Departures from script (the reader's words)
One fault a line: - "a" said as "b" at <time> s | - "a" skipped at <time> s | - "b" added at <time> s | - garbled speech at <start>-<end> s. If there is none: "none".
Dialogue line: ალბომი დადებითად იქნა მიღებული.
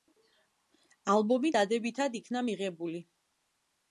none